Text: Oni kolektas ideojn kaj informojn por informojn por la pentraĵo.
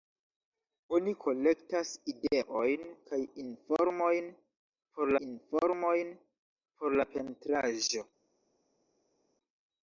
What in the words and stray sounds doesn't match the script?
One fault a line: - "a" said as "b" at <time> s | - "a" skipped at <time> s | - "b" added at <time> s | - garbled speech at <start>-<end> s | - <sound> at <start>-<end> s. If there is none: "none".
none